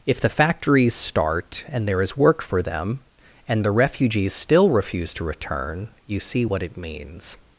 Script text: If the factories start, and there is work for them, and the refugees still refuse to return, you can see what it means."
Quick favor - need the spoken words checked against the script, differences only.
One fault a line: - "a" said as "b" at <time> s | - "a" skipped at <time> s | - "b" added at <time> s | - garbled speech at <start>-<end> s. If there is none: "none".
- "can" skipped at 6.2 s